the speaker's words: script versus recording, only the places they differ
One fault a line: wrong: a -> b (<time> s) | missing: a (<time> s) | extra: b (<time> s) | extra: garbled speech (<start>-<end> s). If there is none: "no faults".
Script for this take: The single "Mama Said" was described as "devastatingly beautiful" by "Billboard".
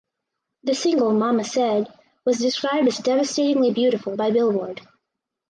no faults